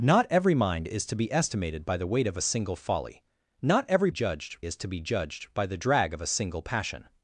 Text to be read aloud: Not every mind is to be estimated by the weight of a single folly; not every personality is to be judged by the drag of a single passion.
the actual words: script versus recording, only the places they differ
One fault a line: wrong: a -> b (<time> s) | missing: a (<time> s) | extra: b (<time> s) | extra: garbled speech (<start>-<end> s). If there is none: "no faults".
wrong: personality -> judged (4.1 s)